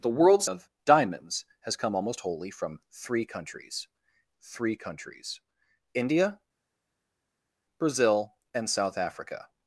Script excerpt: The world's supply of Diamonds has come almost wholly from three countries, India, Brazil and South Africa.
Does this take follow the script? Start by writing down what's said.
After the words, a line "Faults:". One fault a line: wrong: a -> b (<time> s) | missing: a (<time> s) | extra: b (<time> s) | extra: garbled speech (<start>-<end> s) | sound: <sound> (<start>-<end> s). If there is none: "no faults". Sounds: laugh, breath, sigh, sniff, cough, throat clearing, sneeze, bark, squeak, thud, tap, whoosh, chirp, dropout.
The world's of Diamonds has come almost wholly from three countries three countries, India, Brazil and South Africa.
Faults:
missing: supply (0.5 s)
extra: three countries (4.4 s)